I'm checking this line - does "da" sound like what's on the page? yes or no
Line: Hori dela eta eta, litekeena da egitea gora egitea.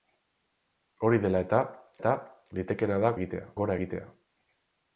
yes